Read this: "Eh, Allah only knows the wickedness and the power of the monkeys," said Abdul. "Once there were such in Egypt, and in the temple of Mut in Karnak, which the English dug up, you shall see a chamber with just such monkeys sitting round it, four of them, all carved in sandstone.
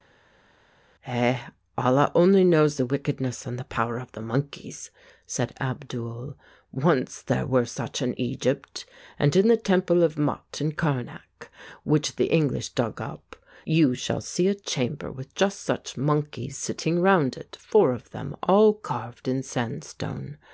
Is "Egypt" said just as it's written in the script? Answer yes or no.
yes